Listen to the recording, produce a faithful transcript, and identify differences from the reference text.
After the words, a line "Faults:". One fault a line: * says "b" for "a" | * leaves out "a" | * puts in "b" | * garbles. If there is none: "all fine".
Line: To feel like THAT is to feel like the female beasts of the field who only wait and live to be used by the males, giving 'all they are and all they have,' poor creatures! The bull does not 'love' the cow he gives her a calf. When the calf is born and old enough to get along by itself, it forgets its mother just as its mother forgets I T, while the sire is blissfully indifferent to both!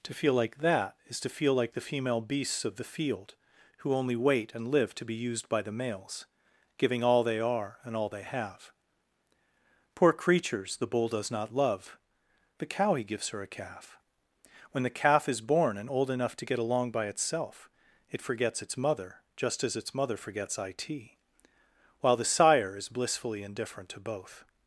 To feel like THAT is to feel like the female beasts of the field who only wait and live to be used by the males, giving 'all they are and all they have,' poor creatures! The bull does not 'love' the cow he gives her a calf. When the calf is born and old enough to get along by itself, it forgets its mother just as its mother forgets I T, while the sire is blissfully indifferent to both!
Faults:
all fine